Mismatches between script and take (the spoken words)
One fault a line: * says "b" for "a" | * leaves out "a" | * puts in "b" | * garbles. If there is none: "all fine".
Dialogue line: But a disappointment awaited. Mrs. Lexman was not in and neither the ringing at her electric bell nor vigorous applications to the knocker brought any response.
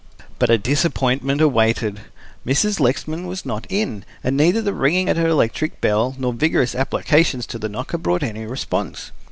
all fine